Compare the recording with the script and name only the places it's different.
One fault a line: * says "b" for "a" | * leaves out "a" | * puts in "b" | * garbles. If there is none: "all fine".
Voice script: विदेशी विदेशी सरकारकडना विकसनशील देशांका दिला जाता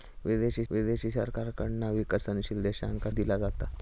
all fine